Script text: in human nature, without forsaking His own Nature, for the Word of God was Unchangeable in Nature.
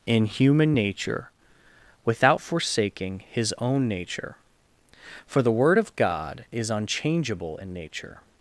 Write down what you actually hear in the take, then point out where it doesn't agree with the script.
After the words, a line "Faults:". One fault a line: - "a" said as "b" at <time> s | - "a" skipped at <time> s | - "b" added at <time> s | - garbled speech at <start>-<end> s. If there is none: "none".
in human nature, without forsaking His own Nature, for the Word of God is Unchangeable in Nature.
Faults:
- "was" said as "is" at 6.5 s